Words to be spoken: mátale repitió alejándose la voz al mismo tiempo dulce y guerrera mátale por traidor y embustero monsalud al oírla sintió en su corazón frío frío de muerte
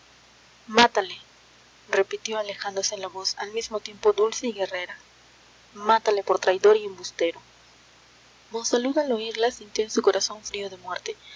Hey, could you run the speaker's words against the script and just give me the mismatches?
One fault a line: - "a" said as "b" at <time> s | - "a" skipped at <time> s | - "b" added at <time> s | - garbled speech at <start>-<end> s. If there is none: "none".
- "frío" skipped at 10.7 s